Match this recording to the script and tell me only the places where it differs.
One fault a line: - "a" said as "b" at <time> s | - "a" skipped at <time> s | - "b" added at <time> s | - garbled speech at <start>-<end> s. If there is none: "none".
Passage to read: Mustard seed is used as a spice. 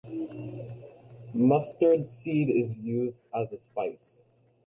none